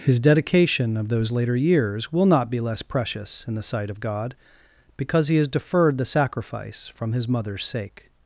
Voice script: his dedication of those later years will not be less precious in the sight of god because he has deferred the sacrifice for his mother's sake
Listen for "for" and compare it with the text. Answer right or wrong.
wrong